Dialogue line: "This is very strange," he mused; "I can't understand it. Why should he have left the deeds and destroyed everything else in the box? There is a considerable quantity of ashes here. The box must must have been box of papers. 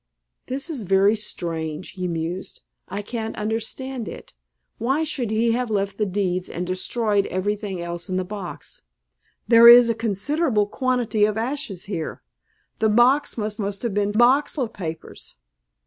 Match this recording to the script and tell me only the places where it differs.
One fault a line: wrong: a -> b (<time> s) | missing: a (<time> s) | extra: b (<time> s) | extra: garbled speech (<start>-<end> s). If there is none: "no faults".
no faults